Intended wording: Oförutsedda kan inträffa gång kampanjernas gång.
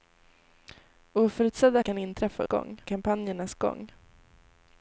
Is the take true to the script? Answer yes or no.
yes